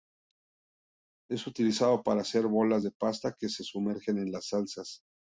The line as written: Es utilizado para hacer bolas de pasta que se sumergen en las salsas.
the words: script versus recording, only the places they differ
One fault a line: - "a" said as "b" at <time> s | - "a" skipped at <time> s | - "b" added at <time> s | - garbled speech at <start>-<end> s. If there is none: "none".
none